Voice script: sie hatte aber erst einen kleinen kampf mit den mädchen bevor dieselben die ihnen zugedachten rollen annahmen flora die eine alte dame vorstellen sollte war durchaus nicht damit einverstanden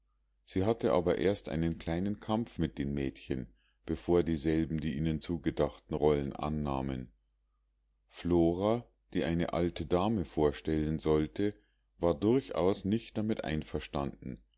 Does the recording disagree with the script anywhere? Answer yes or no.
no